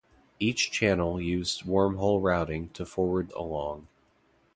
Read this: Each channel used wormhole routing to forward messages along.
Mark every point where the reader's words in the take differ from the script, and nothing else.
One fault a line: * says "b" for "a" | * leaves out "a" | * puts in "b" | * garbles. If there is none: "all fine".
* leaves out "messages"